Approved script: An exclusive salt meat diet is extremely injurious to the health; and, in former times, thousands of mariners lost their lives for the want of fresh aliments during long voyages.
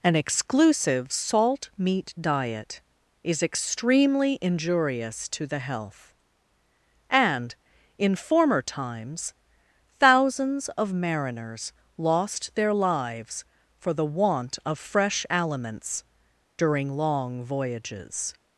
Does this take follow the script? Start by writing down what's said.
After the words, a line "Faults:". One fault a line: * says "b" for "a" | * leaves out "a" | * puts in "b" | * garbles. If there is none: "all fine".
An exclusive salt meat diet is extremely injurious to the health; and, in former times, thousands of mariners lost their lives for the want of fresh aliments during long voyages.
Faults:
all fine